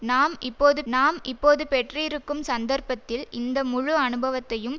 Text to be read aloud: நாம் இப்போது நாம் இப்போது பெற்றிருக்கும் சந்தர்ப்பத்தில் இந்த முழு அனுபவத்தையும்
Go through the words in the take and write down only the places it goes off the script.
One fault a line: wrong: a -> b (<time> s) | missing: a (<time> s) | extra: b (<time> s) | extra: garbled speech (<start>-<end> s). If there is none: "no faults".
no faults